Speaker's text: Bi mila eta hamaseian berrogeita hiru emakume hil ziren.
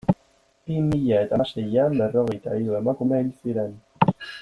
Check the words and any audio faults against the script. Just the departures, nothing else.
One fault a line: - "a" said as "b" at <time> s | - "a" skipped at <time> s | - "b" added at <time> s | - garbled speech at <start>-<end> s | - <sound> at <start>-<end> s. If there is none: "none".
none